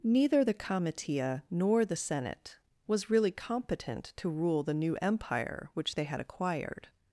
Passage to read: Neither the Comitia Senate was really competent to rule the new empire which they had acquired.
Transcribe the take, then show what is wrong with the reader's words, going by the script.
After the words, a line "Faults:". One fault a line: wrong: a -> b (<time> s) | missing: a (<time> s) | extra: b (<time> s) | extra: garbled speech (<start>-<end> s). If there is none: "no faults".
Neither the Comitia nor the Senate was really competent to rule the new empire which they had acquired.
Faults:
extra: nor the (1.5 s)